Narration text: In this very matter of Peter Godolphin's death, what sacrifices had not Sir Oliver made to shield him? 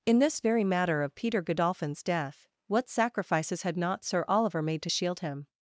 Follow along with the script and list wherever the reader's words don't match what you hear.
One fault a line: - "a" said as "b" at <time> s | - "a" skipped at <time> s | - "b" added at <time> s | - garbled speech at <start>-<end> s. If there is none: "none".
none